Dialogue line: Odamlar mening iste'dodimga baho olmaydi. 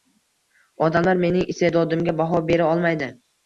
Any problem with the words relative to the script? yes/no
yes